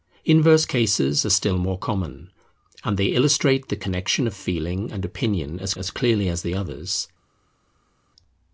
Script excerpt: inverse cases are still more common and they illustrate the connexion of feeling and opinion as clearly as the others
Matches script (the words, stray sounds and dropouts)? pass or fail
fail